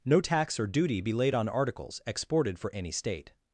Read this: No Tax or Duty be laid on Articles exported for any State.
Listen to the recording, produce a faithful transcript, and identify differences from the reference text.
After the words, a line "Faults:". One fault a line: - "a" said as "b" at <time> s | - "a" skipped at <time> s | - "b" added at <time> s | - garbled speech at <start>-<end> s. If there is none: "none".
No Tax or Duty be laid on Articles exported for any State.
Faults:
none